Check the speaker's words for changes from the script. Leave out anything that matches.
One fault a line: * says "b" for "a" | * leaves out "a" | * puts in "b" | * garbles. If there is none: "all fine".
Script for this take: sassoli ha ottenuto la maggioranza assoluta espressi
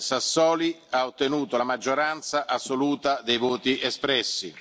* puts in "dei voti"